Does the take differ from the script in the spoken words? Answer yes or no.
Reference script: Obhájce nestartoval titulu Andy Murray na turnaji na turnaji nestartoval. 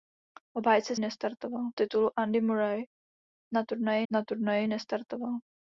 no